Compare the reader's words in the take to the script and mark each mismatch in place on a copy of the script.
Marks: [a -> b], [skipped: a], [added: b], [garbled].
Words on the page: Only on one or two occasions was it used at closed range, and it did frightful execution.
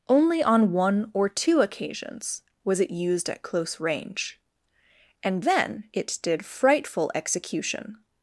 Only on one or two occasions was it used at [closed -> close] range, and [added: then] it did frightful execution.